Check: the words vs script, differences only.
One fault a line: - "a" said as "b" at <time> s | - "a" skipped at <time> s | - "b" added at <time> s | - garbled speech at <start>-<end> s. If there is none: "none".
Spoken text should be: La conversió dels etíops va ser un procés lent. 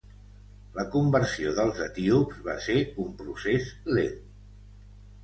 none